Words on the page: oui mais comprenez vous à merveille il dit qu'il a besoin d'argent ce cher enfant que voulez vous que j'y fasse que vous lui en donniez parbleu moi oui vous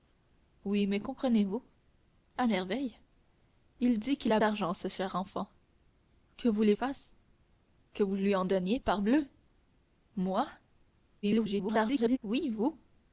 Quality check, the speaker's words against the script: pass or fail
fail